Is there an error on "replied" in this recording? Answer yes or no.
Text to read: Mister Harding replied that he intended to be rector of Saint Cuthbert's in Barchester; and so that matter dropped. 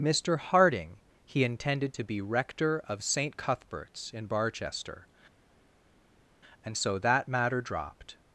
yes